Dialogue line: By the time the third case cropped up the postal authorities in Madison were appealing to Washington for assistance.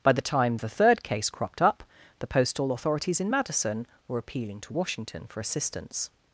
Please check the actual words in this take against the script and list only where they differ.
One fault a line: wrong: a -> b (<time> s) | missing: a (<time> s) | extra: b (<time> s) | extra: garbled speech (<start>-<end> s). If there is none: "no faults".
no faults